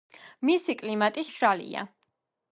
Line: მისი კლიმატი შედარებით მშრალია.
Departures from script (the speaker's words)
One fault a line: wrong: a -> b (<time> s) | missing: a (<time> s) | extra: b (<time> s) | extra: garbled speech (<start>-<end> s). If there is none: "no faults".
missing: შედარებით (1.2 s)